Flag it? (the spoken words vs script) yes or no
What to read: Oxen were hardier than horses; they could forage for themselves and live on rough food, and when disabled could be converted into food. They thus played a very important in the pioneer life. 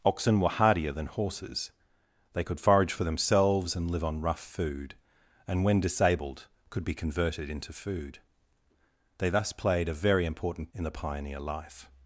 no